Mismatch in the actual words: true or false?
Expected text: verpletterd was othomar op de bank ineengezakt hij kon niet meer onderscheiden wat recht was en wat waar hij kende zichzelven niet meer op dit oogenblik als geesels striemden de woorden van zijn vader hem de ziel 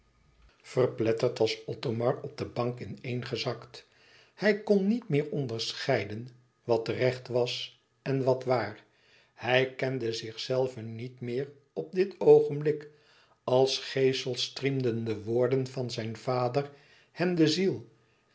false